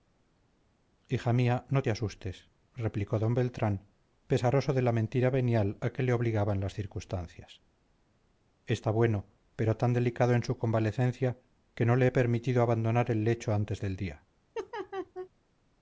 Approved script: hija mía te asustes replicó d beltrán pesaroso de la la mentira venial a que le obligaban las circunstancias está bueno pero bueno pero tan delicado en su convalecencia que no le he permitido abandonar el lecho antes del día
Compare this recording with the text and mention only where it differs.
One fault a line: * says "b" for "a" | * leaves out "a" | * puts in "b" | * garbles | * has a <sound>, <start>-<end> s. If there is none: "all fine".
* puts in "no"
* leaves out "la"
* leaves out "bueno pero"
* has a laugh, 14.5-15.3 s